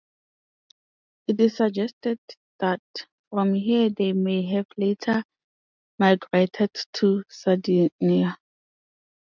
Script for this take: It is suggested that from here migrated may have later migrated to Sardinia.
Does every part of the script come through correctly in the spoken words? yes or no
no